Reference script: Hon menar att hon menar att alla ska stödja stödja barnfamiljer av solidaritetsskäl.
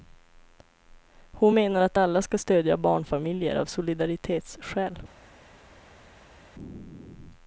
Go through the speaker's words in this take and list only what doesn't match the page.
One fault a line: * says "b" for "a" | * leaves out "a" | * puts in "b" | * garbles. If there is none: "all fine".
* leaves out "hon menar att"
* leaves out "stödja"